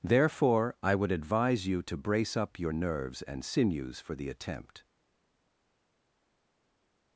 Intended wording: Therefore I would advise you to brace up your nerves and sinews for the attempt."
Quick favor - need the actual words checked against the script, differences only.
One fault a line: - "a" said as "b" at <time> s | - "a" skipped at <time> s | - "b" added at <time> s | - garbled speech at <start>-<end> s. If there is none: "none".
none